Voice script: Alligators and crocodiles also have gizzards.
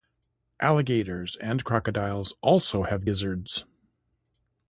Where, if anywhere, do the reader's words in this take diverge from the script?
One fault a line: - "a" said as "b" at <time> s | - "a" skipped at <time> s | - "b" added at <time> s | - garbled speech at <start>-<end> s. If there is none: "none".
none